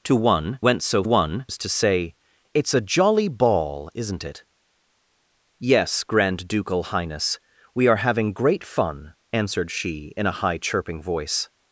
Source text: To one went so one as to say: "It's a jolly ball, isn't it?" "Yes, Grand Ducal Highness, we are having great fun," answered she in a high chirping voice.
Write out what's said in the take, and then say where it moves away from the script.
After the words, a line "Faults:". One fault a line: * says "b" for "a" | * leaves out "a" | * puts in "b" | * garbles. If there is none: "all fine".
To one went so one as to say: "It's a jolly ball, isn't it?" "Yes, Grand Ducal Highness, we are having great fun," answered she in a high chirping voice.
Faults:
all fine